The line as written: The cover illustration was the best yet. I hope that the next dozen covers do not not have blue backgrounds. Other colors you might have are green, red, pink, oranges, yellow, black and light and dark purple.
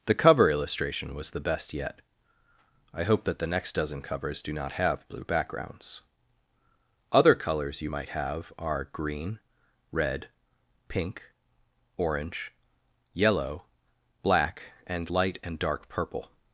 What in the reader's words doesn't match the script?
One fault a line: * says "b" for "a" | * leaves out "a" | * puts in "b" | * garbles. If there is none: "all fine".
* leaves out "not"
* says "orange" for "oranges"